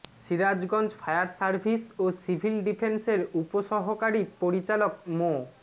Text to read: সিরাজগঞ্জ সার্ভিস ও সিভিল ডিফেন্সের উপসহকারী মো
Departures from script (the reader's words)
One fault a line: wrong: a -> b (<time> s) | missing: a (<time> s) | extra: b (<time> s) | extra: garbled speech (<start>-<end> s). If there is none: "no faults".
extra: ফায়ার (1.0 s)
extra: পরিচালক (4.4 s)